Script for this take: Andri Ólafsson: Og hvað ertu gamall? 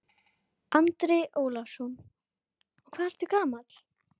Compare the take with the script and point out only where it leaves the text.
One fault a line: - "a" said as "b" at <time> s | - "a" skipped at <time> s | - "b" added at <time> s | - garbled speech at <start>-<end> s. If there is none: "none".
none